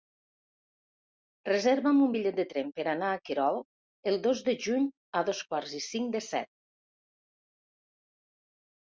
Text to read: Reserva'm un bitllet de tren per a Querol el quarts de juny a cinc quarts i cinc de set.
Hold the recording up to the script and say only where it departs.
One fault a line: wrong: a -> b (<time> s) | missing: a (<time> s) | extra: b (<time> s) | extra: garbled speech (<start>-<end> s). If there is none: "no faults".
extra: anar (3.0 s)
wrong: quarts -> dos (4.3 s)
wrong: cinc -> dos (5.3 s)